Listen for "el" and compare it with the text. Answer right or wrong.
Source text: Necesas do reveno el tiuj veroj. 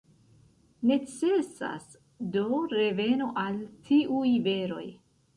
wrong